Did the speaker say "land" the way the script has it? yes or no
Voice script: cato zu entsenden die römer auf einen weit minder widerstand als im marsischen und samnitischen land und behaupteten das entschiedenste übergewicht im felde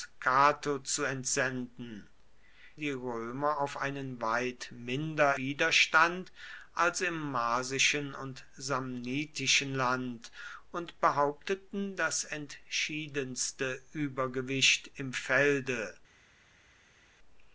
yes